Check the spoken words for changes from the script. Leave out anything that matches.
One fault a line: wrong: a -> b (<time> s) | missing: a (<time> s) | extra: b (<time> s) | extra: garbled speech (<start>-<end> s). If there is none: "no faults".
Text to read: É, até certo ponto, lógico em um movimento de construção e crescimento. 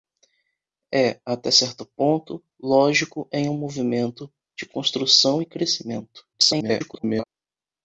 extra: garbled speech (6.3-7.3 s)